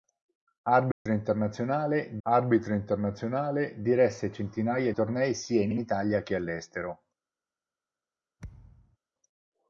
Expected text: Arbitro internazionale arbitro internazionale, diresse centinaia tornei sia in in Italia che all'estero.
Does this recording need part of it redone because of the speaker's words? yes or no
no